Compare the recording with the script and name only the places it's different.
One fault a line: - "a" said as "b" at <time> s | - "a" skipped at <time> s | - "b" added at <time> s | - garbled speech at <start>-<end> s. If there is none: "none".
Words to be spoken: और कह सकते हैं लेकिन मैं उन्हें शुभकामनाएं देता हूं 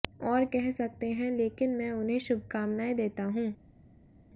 none